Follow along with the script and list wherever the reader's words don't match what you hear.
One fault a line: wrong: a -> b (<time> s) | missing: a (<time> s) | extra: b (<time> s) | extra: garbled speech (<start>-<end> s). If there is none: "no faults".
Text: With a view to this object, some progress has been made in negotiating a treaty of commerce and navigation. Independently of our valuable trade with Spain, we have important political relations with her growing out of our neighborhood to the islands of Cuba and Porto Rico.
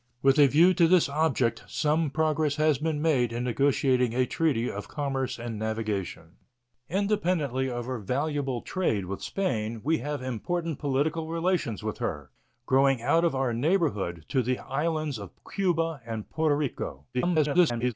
extra: garbled speech (17.1-17.9 s)